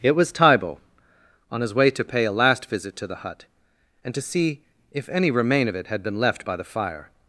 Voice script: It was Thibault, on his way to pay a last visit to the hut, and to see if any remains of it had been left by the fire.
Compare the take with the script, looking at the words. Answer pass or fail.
fail